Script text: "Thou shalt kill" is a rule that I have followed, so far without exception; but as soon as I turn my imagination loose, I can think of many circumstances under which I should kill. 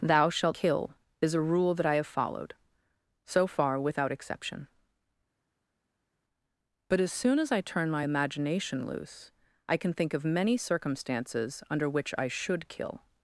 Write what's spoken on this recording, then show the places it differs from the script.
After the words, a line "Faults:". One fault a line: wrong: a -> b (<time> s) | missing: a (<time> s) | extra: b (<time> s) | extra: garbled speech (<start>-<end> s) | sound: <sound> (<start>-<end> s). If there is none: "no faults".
"Thou shalt kill" is a rule that I have followed, so far without exception; but as soon as I turn my imagination loose, I can think of many circumstances under which I should kill.
Faults:
no faults